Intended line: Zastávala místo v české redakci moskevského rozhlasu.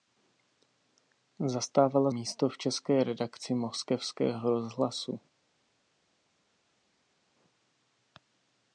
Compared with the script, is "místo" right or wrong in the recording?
right